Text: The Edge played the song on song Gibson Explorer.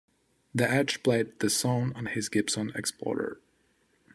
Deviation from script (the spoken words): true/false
true